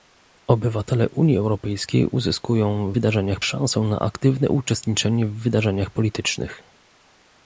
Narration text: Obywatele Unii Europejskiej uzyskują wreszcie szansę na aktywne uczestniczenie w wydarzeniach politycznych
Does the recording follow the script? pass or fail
fail